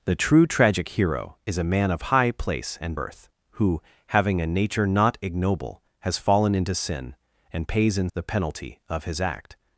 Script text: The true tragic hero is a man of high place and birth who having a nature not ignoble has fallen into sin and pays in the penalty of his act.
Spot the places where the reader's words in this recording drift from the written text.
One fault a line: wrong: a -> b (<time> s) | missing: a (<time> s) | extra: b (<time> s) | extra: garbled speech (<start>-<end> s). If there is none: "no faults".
no faults